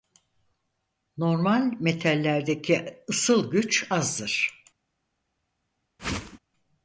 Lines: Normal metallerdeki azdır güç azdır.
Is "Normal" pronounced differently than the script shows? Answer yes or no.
no